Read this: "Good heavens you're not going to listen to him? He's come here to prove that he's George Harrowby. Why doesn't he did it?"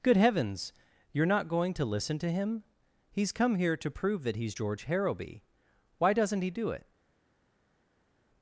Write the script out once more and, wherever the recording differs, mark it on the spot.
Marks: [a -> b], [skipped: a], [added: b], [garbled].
"Good heavens you're not going to listen to him? He's come here to prove that he's George Harrowby. Why doesn't he [did -> do] it?"